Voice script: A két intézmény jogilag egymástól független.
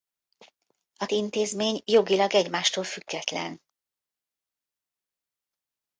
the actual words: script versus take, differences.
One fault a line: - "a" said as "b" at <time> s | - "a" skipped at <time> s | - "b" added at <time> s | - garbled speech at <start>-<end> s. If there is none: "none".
- "két" skipped at 1.1 s